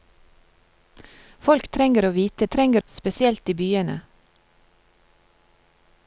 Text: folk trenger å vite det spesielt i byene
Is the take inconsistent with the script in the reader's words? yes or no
yes